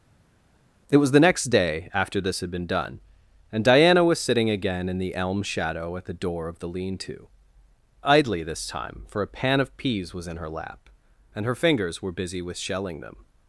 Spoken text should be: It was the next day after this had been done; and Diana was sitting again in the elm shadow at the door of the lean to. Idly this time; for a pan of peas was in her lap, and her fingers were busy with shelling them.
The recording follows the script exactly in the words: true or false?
true